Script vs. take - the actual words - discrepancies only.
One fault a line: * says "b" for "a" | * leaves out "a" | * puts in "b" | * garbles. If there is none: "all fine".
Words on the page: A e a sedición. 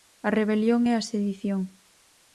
* puts in "rebelión"